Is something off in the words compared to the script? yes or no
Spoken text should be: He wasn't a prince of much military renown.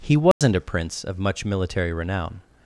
no